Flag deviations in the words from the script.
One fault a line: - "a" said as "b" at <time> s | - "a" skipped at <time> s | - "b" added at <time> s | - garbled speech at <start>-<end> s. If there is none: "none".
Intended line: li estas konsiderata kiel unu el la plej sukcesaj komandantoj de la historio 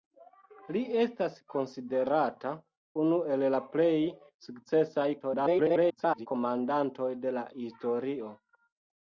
- "kiel" skipped at 2.5 s
- garbled speech at 5.2-6.3 s